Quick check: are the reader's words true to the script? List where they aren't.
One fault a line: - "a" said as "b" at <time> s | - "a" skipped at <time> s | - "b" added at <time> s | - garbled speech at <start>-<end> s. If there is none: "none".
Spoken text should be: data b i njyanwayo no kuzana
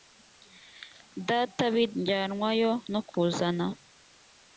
none